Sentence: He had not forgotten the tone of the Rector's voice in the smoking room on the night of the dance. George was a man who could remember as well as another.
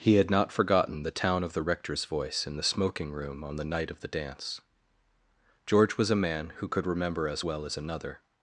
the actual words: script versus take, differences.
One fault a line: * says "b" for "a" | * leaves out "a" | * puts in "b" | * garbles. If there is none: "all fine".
* says "town" for "tone"